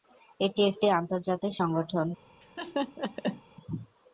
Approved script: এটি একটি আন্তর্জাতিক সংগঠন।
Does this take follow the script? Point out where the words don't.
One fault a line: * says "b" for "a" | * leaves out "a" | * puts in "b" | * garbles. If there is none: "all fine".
all fine